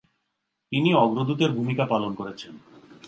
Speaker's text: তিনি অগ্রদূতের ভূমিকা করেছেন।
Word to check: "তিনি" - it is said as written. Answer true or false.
true